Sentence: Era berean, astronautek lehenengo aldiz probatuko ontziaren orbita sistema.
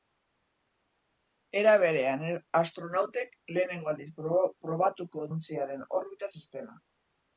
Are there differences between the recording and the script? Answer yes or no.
no